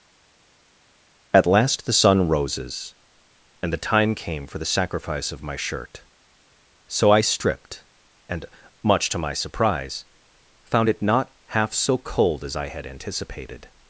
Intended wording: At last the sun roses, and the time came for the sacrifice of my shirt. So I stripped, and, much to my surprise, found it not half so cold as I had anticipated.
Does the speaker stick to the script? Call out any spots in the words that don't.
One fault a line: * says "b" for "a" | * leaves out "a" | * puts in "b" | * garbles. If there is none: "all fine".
all fine